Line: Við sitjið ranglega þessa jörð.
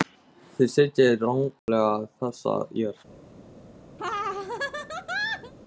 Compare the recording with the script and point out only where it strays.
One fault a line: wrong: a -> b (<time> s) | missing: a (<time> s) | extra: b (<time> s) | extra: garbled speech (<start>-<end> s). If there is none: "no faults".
wrong: Við -> Þið (0.6 s)